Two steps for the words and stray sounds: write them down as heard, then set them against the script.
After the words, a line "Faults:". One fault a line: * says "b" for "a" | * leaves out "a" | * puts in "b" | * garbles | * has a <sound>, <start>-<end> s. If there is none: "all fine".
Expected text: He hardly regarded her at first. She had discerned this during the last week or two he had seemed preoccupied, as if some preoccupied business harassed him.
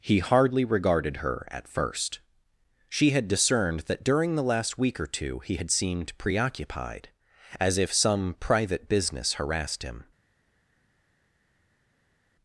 He hardly regarded her at first. She had discerned that during the last week or two he had seemed preoccupied, as if some private business harassed him.
Faults:
* says "that" for "this"
* says "private" for "preoccupied"